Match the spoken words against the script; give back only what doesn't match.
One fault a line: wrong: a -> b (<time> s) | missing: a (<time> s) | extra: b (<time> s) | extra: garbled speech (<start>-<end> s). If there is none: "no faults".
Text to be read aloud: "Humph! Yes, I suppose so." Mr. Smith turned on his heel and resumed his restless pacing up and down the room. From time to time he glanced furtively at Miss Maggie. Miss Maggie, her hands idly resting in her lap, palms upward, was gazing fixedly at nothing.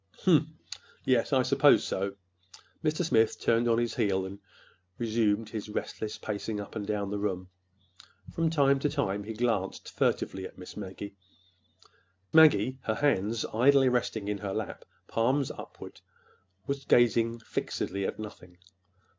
missing: Miss (11.2 s)